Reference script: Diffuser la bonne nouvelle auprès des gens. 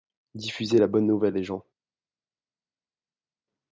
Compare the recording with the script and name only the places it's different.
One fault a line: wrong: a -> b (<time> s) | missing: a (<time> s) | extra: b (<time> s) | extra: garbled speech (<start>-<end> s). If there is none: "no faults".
missing: auprès (1.4 s)